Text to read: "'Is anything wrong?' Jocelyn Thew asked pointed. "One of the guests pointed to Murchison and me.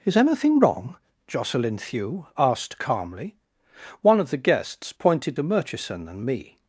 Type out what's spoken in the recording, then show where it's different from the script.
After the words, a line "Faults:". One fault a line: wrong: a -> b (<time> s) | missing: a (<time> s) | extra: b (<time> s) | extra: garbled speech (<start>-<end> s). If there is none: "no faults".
"'Is anything wrong?' Jocelyn Thew asked calmly. "One of the guests pointed to Murchison and me.
Faults:
wrong: pointed -> calmly (2.8 s)